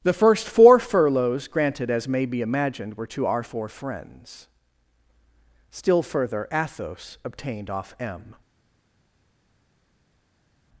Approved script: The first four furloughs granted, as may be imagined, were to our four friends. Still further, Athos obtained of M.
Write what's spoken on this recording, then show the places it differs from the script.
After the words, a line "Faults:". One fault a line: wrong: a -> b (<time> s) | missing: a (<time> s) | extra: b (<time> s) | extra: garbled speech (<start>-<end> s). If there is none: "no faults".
The first four furloughs granted, as may be imagined, were to our four friends. Still further, Athos obtained off M.
Faults:
wrong: of -> off (7.7 s)